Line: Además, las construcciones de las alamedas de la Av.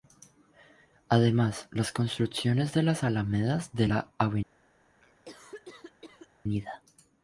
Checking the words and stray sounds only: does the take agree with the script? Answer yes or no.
no